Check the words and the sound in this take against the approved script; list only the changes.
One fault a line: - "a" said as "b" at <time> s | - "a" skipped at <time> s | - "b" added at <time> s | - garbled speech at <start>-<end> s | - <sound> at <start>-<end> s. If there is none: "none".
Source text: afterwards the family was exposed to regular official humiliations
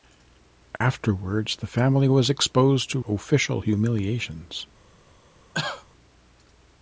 - dropout at 0.8-0.8 s
- "regular" skipped at 3.0 s
- cough at 5.5-5.9 s